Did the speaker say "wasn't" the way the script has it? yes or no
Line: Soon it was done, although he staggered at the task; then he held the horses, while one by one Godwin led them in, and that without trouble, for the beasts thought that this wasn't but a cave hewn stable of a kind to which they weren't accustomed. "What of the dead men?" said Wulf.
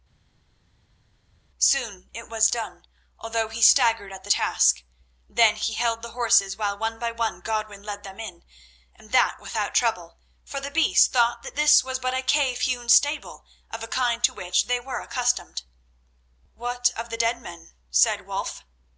no